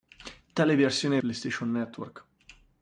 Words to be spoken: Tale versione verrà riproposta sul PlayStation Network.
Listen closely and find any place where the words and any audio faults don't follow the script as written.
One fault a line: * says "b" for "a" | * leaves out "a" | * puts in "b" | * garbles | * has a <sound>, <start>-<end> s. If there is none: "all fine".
* leaves out "verrà riproposta sul"